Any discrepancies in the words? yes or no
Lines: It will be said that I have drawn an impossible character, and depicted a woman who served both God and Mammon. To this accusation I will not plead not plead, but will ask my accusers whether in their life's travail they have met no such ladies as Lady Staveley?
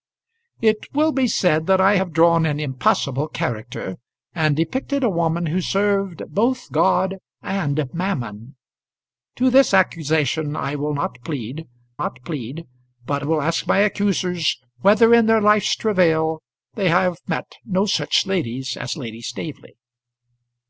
no